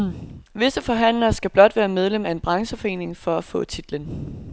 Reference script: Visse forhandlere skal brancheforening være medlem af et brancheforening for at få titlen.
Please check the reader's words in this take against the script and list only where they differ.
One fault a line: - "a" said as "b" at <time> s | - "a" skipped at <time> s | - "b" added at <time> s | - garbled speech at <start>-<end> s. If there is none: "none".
- "brancheforening" said as "blot" at 1.5 s
- "et" said as "en" at 2.3 s